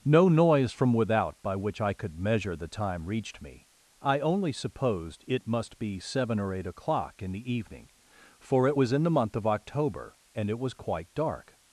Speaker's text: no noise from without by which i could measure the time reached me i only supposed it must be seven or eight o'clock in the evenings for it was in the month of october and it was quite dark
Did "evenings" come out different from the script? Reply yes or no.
yes